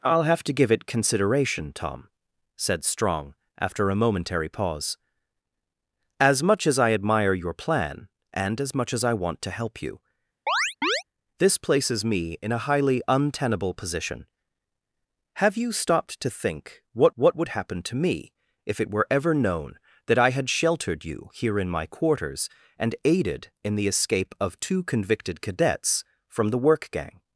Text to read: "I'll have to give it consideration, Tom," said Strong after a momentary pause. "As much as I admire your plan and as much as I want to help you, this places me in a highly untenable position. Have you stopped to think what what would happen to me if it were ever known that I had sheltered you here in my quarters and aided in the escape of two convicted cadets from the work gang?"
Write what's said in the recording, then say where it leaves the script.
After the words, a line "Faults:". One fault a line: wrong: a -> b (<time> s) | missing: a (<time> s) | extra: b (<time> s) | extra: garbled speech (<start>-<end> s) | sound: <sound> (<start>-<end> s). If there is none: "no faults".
"I'll have to give it consideration, Tom," said Strong after a momentary pause. "As much as I admire your plan and as much as I want to help you, this places me in a highly untenable position. Have you stopped to think what what would happen to me if it were ever known that I had sheltered you here in my quarters and aided in the escape of two convicted cadets from the work gang?"
Faults:
sound: chirp (10.5-11.0 s)